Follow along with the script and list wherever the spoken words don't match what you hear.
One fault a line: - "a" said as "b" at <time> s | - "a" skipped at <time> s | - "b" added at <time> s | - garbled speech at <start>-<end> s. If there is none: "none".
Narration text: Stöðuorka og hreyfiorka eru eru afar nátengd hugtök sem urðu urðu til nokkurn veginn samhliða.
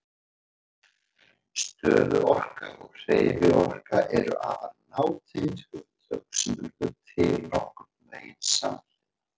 - "eru" skipped at 4.3 s
- "urðu" skipped at 6.9 s